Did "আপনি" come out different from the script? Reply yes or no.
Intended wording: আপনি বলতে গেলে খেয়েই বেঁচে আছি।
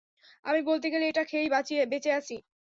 yes